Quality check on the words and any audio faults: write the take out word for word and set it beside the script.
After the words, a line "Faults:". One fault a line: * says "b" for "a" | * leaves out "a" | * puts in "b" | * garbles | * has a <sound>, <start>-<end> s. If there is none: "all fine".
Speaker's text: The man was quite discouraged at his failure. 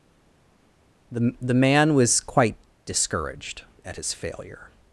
The the man was quite discouraged at his failure.
Faults:
* puts in "the"